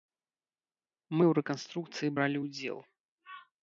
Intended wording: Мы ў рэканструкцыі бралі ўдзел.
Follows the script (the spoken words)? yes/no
yes